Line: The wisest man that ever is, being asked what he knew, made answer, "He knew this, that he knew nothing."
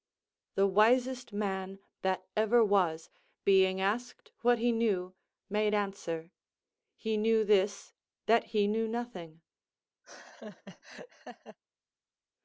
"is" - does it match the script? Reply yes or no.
no